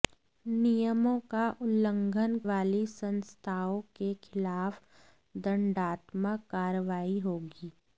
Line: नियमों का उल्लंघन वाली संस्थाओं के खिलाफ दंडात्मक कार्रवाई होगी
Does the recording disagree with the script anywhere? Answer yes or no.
no